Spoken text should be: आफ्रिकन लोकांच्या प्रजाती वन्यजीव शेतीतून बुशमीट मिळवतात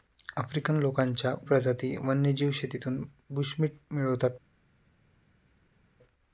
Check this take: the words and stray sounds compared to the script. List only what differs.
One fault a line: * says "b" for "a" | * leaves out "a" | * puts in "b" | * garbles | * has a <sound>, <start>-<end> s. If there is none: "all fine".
all fine